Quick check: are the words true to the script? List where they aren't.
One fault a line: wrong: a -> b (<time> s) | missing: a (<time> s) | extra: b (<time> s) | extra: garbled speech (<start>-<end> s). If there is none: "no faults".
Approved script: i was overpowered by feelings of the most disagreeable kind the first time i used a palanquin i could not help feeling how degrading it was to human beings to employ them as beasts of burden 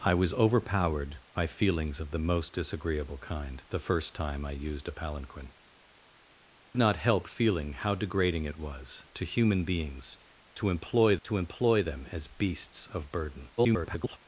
missing: i could (5.5 s)
extra: to employ (11.2 s)
extra: garbled speech (13.6-14.2 s)